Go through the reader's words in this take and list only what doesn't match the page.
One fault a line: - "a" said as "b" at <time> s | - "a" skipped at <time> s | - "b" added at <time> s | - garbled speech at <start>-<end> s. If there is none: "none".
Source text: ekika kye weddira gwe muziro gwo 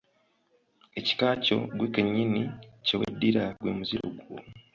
- "kyo ggwe kennyini" added at 1.4 s